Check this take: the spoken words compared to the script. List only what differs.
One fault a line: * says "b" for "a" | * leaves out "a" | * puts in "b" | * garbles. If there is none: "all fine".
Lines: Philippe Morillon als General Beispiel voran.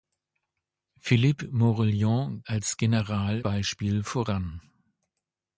all fine